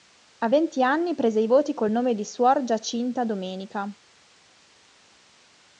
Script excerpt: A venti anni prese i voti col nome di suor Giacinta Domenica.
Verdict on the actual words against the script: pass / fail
pass